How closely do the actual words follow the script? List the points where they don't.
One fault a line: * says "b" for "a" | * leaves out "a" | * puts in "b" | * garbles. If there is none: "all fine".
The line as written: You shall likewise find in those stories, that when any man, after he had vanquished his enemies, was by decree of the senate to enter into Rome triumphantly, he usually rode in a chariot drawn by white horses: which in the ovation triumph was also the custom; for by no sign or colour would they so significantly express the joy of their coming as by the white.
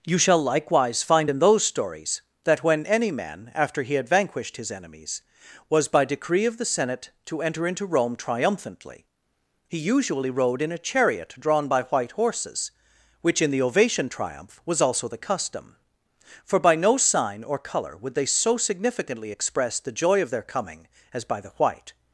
all fine